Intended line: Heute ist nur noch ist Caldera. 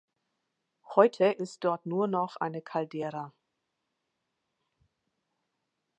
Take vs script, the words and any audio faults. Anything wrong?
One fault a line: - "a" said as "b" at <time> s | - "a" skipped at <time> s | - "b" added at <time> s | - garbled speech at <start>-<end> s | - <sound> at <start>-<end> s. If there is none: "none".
- "dort" added at 1.6 s
- "ist" said as "eine" at 2.4 s